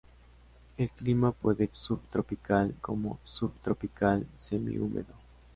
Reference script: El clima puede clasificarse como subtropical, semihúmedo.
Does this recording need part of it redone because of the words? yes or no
yes